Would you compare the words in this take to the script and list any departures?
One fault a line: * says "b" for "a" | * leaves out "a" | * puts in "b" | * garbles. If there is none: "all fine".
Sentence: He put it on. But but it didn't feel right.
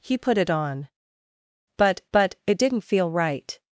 all fine